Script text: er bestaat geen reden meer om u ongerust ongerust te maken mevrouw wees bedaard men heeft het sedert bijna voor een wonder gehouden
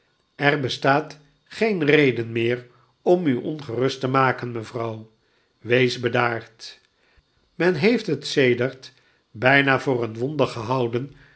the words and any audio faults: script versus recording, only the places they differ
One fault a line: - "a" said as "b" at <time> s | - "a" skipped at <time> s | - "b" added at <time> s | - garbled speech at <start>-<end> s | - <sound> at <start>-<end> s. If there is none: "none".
- "ongerust" skipped at 4.0 s